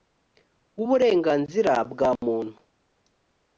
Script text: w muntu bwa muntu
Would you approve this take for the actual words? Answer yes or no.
no